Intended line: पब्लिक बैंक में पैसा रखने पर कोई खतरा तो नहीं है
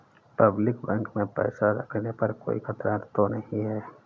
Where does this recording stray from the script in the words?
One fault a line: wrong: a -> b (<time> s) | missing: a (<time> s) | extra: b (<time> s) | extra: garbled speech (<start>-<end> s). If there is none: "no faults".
no faults